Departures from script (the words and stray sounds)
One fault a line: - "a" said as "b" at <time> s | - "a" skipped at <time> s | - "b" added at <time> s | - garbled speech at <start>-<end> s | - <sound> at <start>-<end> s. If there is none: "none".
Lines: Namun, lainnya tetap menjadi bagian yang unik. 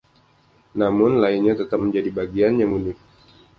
none